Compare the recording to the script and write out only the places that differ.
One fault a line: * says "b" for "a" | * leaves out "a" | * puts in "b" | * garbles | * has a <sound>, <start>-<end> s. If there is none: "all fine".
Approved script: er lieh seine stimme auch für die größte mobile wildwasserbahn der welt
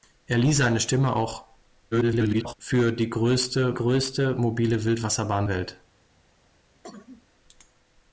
* garbles
* puts in "größte"
* leaves out "der"
* has a cough, 6.8-7.3 s